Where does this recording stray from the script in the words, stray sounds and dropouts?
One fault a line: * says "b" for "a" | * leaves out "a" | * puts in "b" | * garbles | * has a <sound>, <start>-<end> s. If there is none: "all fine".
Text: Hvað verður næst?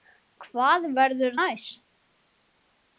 all fine